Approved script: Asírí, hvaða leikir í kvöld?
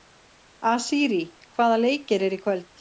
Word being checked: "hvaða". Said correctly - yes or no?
yes